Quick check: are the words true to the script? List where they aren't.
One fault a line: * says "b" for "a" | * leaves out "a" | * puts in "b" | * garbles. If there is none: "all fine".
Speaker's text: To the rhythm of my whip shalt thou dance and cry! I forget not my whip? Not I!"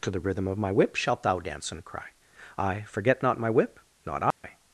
all fine